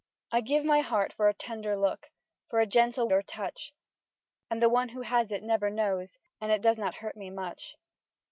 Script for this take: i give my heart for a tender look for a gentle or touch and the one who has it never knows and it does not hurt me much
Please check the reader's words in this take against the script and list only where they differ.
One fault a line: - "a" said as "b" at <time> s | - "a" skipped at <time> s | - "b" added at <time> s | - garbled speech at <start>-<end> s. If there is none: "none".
none